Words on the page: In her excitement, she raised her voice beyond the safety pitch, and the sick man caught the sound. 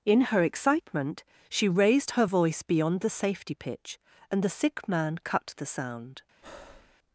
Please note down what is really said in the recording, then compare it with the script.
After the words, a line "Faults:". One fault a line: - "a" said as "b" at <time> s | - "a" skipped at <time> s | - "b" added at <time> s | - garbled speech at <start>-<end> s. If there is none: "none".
In her excitement, she raised her voice beyond the safety pitch, and the sick man cut the sound.
Faults:
- "caught" said as "cut" at 5.2 s